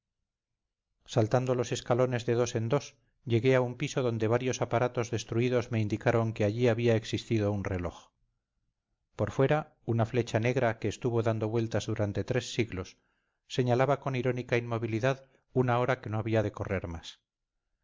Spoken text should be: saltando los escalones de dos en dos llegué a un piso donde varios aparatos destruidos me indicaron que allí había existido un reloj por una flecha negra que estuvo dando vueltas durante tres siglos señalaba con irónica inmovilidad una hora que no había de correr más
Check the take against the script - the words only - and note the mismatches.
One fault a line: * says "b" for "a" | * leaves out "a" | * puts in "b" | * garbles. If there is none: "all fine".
* puts in "fuera"